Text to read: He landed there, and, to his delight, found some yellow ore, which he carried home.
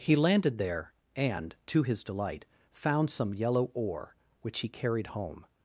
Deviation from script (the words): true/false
false